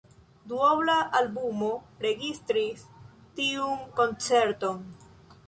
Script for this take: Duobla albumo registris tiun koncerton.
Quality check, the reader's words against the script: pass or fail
pass